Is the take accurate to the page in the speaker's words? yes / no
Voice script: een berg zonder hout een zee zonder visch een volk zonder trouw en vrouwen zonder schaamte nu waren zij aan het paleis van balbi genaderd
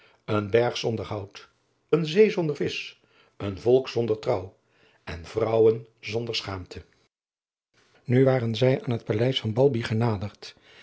yes